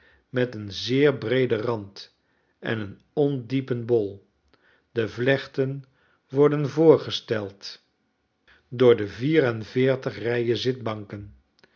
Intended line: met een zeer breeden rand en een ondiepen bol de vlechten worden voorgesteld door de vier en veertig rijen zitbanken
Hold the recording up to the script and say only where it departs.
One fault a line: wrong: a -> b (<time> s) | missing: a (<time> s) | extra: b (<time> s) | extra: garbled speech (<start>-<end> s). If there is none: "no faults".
no faults